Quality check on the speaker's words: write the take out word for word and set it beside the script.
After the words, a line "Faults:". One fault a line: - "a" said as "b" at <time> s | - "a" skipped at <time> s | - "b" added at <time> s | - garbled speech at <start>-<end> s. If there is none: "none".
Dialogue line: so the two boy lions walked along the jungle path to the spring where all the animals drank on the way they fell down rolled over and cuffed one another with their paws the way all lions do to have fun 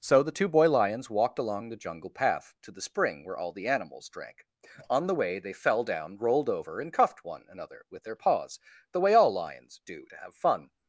so the two boy lions walked along the jungle path to the spring where all the animals drank on the way they fell down rolled over and cuffed one another with their paws the way all lions do to have fun
Faults:
none